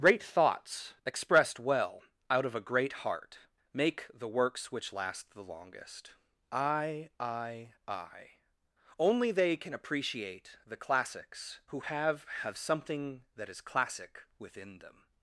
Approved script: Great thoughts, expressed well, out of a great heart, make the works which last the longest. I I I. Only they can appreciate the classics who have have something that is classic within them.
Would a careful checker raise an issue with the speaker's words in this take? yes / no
no